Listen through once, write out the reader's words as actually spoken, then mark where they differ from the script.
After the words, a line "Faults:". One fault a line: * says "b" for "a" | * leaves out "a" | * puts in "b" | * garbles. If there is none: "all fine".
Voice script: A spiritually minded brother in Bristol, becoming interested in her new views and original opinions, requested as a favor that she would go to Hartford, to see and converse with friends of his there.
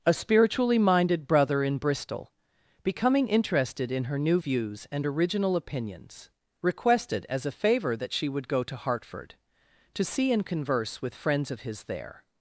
A spiritually minded brother in Bristol, becoming interested in her new views and original opinions, requested as a favor that she would go to Hartford, to see and converse with friends of his there.
Faults:
all fine